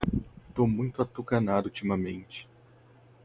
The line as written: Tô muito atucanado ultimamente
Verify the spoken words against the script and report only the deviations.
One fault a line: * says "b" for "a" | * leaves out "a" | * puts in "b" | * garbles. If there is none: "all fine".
all fine